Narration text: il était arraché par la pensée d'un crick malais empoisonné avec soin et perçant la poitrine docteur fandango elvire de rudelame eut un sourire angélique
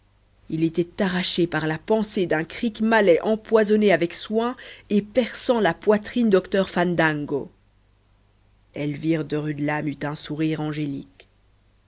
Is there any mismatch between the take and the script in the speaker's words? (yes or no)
no